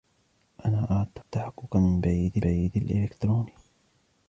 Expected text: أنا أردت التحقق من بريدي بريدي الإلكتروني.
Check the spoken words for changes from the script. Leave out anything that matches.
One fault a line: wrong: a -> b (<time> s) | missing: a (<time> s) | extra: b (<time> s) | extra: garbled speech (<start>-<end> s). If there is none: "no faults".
no faults